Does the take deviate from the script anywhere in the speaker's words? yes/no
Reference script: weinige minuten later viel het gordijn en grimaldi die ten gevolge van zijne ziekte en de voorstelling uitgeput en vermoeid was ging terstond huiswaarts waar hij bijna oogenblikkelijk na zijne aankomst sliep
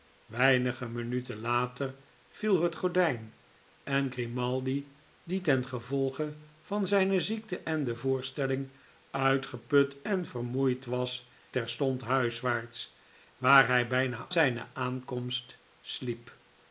yes